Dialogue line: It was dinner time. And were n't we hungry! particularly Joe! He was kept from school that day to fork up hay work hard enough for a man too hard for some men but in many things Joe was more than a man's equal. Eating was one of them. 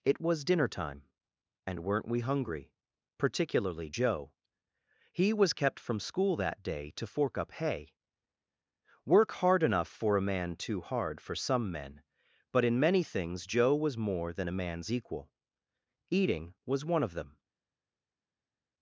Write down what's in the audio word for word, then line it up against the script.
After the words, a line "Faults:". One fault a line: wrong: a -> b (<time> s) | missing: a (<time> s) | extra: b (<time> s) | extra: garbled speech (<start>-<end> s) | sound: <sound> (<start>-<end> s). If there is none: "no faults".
It was dinner time. And were n't we hungry! particularly Joe! He was kept from school that day to fork up hay work hard enough for a man too hard for some men but in many things Joe was more than a man's equal. Eating was one of them.
Faults:
no faults